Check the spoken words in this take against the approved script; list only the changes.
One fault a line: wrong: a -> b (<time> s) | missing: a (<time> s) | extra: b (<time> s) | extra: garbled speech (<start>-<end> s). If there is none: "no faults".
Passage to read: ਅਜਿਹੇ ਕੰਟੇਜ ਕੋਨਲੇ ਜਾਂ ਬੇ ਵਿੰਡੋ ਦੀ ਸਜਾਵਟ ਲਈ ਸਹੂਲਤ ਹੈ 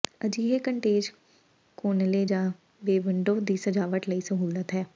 no faults